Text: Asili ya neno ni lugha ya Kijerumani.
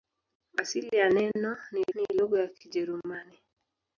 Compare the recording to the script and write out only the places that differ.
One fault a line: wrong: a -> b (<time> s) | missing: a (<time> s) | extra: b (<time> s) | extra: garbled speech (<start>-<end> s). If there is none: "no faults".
extra: ni (1.9 s)